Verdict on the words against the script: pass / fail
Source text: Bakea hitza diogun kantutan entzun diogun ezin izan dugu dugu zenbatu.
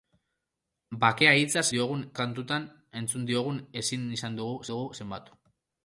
pass